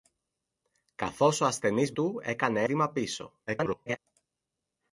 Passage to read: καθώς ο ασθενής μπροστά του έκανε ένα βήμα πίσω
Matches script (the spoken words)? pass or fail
fail